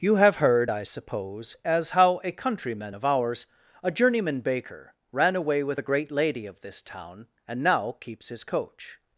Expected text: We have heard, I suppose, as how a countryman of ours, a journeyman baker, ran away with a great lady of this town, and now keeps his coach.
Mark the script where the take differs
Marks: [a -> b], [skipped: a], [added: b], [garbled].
[We -> You] have heard, I suppose, as how a countryman of ours, a journeyman baker, ran away with a great lady of this town, and now keeps his coach.